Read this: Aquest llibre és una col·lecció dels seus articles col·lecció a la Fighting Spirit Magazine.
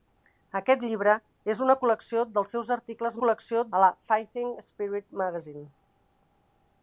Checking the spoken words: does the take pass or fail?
pass